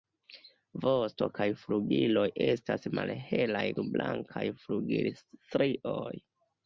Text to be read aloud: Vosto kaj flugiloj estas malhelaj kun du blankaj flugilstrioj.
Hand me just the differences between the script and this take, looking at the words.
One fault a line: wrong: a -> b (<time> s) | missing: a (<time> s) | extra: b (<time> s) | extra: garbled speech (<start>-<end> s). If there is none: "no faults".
missing: kun (3.6 s)